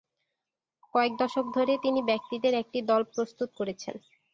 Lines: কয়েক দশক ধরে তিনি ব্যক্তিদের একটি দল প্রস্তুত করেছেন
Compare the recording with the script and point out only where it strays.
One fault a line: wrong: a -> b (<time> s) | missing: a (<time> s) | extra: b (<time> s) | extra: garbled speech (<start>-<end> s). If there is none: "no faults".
no faults